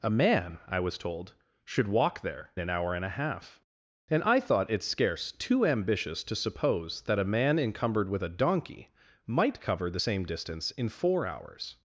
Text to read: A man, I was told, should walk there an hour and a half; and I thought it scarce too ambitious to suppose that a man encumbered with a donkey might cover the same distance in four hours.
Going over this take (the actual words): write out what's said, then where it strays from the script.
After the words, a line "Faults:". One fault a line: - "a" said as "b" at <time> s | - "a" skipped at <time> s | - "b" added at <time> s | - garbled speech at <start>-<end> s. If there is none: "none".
A man, I was told, should walk there an hour and a half; and I thought it scarce too ambitious to suppose that a man encumbered with a donkey might cover the same distance in four hours.
Faults:
none